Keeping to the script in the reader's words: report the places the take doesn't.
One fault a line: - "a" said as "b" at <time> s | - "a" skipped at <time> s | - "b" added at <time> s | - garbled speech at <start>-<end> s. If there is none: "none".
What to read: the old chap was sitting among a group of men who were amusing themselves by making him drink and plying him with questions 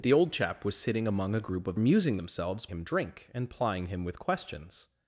- "men who were" skipped at 1.8 s
- "by making" skipped at 2.7 s